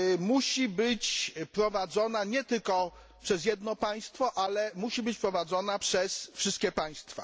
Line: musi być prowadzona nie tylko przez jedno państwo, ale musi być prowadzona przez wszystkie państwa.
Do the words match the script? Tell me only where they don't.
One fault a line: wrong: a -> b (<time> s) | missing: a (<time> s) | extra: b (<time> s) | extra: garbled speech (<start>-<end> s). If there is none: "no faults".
no faults